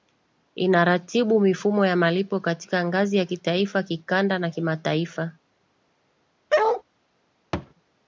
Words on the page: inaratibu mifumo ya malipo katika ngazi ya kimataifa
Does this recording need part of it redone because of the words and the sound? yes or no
yes